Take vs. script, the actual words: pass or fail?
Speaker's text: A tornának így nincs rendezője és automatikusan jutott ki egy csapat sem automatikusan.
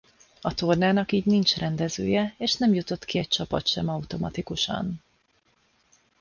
fail